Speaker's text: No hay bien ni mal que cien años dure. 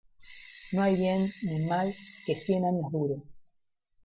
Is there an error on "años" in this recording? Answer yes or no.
no